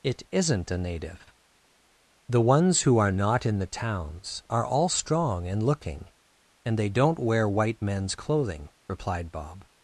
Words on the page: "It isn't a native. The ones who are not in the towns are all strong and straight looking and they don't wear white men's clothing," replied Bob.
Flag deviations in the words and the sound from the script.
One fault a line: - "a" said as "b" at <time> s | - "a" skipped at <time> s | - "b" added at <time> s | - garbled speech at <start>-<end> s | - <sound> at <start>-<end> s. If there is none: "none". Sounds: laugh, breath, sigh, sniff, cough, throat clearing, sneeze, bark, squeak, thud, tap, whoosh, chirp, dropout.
- "straight" skipped at 5.6 s